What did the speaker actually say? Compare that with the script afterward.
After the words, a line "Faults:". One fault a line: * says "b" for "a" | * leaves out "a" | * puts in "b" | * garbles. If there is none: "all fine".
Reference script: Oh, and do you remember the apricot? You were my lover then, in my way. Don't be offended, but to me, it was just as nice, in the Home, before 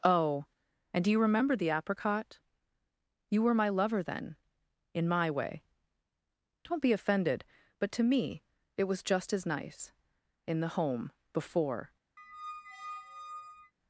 Oh, and do you remember the apricot? You were my lover then, in my way. Don't be offended, but to me, it was just as nice, in the Home, before
Faults:
all fine